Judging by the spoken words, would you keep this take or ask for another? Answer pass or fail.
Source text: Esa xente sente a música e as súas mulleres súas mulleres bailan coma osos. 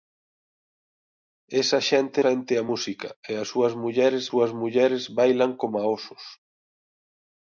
pass